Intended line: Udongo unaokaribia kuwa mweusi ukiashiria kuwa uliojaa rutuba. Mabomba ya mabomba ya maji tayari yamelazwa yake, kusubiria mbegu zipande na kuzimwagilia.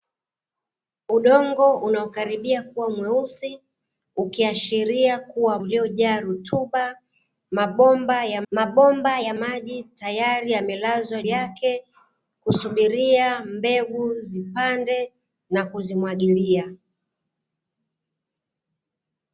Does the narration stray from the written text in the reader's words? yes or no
no